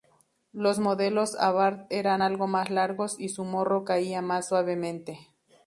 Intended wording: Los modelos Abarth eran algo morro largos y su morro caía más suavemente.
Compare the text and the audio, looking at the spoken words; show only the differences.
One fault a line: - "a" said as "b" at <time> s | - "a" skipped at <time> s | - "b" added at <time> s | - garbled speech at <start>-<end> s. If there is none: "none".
- "morro" said as "más" at 2.5 s